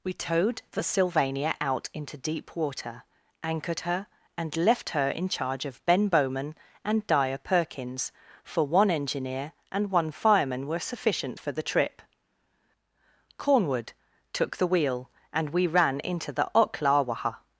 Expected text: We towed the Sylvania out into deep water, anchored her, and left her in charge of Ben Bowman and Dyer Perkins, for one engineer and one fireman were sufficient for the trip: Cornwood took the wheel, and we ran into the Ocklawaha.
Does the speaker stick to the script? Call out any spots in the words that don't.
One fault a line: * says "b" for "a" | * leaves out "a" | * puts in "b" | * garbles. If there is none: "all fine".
all fine